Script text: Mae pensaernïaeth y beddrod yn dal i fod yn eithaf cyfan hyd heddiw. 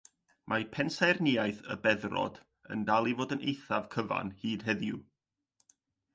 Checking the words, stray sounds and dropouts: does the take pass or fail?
pass